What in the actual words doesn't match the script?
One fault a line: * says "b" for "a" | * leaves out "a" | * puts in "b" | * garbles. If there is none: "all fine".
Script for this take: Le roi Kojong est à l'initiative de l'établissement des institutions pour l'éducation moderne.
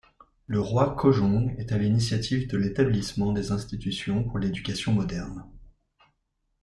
all fine